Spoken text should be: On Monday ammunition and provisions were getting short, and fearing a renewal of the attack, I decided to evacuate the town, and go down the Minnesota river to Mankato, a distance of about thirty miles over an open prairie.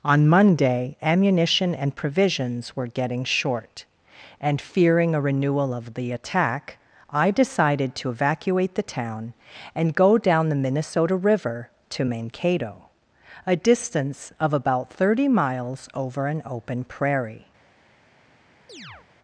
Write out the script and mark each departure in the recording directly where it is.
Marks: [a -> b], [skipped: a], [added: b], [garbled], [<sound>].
On Monday ammunition and provisions were getting short, and fearing a renewal of the attack, I decided to evacuate the town, and go down the Minnesota river to Mankato, a distance of about thirty miles over an open prairie. [chirp]